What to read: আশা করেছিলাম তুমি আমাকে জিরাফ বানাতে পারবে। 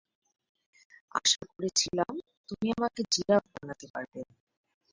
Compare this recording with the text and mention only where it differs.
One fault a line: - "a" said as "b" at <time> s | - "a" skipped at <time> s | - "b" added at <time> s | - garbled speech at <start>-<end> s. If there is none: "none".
none